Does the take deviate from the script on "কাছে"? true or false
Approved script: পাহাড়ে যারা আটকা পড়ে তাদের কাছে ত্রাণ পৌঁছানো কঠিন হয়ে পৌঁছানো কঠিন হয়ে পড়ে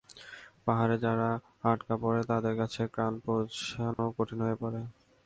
false